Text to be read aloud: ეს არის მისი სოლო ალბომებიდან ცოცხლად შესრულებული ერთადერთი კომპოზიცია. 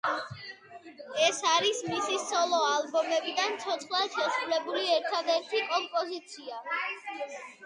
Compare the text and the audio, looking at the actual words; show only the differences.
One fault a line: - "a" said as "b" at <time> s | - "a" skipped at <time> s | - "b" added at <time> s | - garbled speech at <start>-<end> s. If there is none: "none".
none